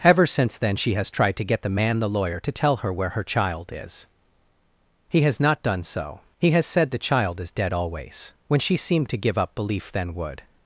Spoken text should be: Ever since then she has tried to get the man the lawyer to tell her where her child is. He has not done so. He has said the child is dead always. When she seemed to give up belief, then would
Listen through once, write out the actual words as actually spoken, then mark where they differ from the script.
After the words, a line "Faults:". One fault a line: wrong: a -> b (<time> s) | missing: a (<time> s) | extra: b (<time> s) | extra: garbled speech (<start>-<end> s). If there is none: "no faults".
Ever since then she has tried to get the man the lawyer to tell her where her child is. He has not done so. He has said the child is dead always. When she seemed to give up belief, then would
Faults:
no faults